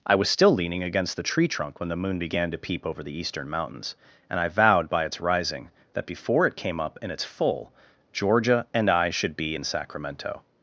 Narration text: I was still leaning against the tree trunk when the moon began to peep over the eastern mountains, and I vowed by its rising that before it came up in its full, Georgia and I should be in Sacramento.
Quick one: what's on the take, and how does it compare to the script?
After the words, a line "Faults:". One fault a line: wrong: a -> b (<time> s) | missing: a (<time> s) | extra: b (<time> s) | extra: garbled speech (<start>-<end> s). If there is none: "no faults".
I was still leaning against the tree trunk when the moon began to peep over the eastern mountains, and I vowed by its rising that before it came up in its full, Georgia and I should be in Sacramento.
Faults:
no faults